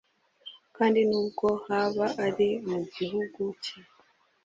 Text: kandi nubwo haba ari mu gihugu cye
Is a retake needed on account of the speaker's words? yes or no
no